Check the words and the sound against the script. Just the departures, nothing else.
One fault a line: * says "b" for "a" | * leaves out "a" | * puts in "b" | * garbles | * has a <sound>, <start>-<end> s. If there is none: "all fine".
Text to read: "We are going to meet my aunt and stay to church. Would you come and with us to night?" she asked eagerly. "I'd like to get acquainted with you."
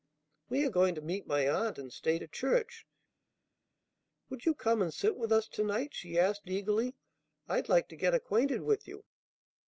* puts in "sit"